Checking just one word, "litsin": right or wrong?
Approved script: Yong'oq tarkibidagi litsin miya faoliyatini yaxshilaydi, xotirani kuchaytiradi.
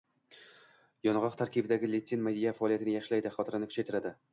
right